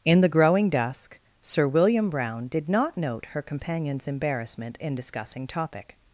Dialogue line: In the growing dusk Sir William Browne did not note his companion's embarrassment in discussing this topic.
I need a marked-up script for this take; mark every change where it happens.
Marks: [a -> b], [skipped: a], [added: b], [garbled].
In the growing dusk Sir William Browne did not note [his -> her] companion's embarrassment in discussing [skipped: this] topic.